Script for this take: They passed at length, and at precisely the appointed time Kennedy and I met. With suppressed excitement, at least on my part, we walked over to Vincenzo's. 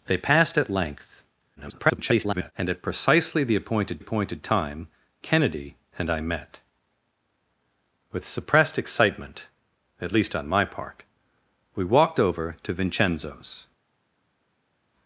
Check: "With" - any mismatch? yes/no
no